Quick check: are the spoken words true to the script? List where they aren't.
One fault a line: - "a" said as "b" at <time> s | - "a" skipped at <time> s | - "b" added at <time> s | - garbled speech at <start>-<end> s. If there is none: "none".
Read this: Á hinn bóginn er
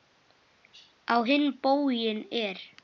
none